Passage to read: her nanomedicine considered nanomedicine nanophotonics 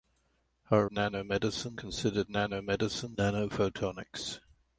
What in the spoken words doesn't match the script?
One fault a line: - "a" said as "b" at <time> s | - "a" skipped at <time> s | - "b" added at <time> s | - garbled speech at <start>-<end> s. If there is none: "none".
none